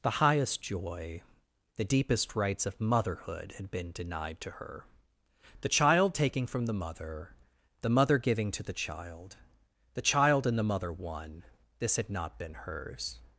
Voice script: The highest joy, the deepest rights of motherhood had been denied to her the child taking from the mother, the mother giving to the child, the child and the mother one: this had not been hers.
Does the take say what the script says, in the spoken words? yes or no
yes